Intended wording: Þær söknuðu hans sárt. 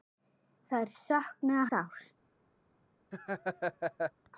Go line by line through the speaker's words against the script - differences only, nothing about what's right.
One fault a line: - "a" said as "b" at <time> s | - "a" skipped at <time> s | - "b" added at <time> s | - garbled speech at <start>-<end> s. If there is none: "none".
- "hans" skipped at 1.7 s